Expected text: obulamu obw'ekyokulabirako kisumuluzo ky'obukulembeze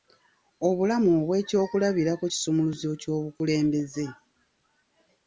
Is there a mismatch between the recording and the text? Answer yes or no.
no